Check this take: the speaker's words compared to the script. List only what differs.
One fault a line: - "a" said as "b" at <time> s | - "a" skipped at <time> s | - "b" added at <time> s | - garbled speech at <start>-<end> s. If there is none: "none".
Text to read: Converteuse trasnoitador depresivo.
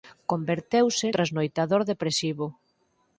none